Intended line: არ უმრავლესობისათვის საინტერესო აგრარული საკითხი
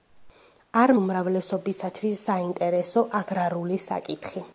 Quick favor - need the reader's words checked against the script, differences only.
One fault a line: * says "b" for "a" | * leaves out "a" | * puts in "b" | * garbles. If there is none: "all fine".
all fine